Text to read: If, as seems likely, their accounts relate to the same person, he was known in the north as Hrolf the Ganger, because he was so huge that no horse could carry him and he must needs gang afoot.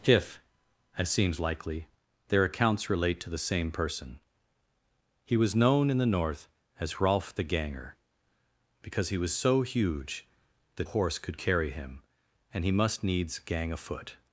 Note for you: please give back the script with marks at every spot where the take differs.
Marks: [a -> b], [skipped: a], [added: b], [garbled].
If, as seems likely, their accounts relate to the same person, he was known in the north as Hrolf the Ganger, because he was so huge that [skipped: no] horse could carry him and he must needs gang afoot.